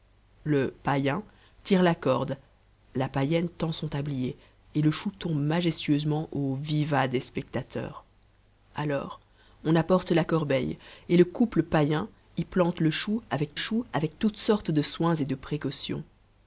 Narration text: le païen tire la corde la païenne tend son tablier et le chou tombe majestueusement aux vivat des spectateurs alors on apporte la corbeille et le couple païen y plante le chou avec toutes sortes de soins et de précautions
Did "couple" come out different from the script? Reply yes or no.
no